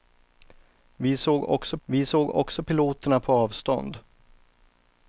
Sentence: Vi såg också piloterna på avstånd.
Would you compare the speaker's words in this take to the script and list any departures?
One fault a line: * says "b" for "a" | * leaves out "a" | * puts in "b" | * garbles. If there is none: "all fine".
* puts in "vi såg också"